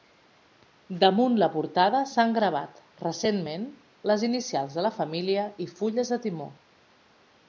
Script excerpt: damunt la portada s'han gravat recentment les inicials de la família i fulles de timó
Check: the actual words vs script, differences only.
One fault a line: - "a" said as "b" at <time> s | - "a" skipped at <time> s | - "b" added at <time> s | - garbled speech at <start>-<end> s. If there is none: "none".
none